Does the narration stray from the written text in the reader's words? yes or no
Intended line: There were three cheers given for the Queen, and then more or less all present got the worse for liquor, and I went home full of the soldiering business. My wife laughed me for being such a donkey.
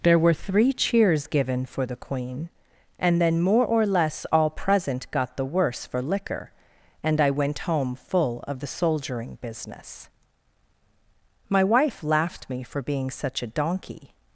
no